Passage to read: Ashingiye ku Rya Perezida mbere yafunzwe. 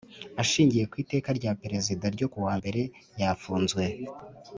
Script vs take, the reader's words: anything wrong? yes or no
yes